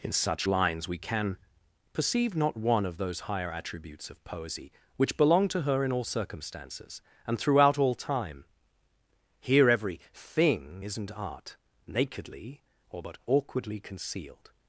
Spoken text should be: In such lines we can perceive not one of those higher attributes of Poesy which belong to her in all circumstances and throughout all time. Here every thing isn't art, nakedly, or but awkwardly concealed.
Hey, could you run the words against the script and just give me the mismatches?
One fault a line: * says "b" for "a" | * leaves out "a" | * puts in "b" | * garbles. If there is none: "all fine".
all fine